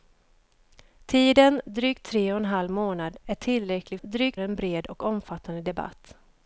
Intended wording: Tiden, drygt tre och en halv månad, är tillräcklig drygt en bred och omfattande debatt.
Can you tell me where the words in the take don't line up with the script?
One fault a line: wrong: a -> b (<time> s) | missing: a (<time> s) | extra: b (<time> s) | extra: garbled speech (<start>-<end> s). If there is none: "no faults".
no faults